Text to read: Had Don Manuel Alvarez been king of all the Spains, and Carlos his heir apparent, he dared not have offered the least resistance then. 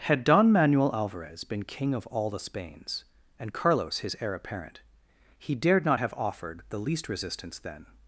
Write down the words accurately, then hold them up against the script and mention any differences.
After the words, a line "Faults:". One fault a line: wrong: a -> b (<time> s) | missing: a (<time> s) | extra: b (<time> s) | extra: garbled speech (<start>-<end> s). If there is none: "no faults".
Had Don Manuel Alvarez been king of all the Spains, and Carlos his heir apparent, he dared not have offered the least resistance then.
Faults:
no faults